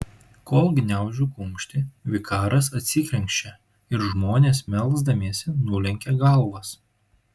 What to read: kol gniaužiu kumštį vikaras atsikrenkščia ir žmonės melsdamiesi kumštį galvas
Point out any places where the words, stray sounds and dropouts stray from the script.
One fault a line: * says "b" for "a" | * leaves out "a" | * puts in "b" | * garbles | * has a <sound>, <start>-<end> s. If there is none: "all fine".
* says "nulenkia" for "kumštį"